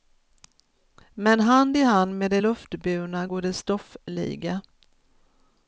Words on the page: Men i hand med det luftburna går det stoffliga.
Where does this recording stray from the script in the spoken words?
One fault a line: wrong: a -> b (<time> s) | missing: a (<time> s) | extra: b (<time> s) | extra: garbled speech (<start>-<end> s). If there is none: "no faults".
extra: hand (1.4 s)